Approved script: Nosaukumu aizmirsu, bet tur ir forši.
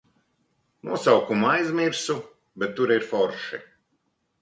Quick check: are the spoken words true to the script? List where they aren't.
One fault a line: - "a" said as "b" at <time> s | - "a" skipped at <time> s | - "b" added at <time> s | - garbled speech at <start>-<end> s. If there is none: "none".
none